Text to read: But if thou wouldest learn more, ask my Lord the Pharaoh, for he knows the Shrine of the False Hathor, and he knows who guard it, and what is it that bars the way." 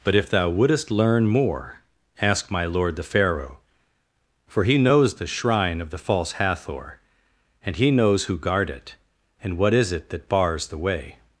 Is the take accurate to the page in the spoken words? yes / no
yes